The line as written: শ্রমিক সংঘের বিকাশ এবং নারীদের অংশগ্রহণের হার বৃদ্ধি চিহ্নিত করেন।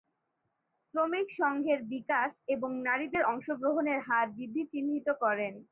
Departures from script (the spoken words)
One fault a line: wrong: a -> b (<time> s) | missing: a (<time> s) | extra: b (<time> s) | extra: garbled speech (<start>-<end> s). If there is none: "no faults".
no faults